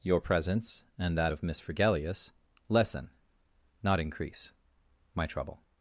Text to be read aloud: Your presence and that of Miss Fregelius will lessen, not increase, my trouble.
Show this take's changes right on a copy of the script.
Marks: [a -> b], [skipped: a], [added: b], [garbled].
Your presence and that of Miss Fregelius [skipped: will] lessen, not increase, my trouble.